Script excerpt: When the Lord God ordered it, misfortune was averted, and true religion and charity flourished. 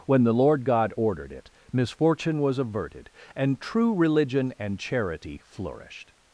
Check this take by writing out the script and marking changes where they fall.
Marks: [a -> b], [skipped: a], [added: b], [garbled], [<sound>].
When the Lord God ordered it, misfortune was averted, and true religion and charity flourished.